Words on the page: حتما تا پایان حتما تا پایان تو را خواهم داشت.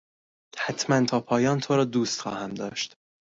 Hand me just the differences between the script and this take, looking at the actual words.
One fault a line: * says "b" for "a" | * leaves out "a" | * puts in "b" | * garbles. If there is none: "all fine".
* leaves out "حتما تا پایان"
* puts in "دوست"